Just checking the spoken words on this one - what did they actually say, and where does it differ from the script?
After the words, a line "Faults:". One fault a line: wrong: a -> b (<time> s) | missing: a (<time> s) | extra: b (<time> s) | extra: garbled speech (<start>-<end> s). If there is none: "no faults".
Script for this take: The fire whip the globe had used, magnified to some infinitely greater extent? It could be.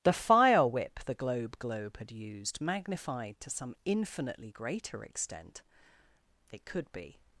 The fire whip the globe globe had used, magnified to some infinitely greater extent? It could be.
Faults:
extra: globe (1.6 s)